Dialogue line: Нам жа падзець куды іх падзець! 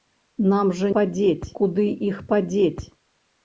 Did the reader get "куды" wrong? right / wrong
right